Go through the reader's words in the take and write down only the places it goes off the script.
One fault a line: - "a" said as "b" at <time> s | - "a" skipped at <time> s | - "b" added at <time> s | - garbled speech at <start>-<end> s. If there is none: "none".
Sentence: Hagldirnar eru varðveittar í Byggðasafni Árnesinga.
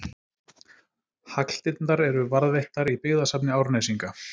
none